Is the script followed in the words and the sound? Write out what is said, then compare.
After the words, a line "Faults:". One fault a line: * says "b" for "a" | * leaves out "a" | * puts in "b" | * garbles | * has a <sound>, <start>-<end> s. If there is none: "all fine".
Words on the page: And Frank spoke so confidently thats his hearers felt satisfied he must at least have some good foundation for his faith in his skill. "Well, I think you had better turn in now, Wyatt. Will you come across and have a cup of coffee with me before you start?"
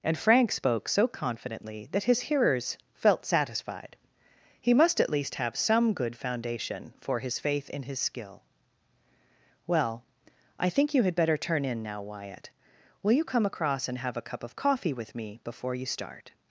And Frank spoke so confidently that his hearers felt satisfied he must at least have some good foundation for his faith in his skill. "Well, I think you had better turn in now, Wyatt. Will you come across and have a cup of coffee with me before you start?"
Faults:
* says "that" for "thats"